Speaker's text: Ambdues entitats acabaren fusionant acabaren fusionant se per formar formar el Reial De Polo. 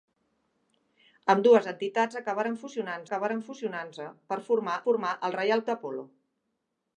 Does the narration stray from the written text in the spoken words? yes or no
no